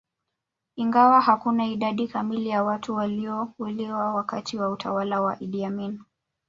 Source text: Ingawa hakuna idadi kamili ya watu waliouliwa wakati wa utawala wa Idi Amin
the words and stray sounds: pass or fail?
pass